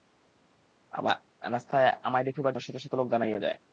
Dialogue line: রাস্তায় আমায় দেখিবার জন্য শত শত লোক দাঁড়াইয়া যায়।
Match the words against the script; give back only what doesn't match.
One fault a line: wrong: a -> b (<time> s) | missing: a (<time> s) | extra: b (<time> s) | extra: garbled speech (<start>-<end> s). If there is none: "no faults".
missing: জন্য (2.5 s)